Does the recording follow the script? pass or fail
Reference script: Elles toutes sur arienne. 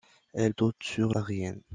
pass